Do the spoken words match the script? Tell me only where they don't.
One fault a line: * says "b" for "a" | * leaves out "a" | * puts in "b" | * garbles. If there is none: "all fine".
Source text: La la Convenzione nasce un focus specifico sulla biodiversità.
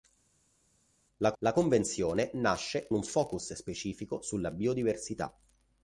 all fine